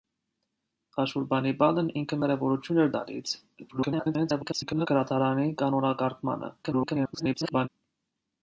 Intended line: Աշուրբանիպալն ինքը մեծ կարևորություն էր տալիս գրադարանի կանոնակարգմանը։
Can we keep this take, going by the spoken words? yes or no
no